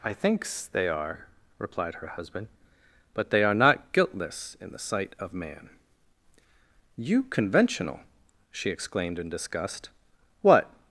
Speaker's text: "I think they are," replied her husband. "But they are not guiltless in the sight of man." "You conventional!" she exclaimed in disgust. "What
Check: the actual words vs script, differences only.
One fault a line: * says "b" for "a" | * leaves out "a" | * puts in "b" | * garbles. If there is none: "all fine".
all fine